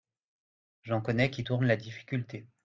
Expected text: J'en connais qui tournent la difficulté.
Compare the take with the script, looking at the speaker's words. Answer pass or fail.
pass